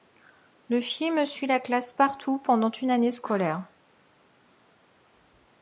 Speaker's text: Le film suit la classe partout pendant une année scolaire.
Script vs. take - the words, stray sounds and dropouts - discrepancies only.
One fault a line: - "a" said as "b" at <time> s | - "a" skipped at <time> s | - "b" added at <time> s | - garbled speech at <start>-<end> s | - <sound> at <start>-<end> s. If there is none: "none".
none